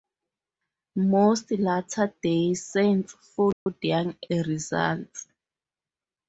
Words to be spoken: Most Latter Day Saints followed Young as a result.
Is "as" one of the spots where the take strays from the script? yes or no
yes